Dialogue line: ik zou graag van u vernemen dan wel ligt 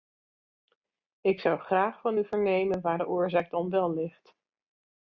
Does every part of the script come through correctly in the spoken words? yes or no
no